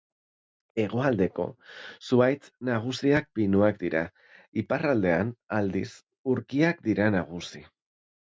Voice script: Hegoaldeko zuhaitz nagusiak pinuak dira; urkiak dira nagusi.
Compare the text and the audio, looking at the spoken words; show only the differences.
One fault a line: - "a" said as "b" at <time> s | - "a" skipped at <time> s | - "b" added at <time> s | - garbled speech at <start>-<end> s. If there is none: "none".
- "iparraldean aldiz" added at 4.6 s